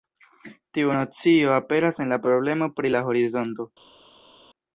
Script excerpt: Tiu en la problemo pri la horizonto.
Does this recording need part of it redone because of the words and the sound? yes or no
yes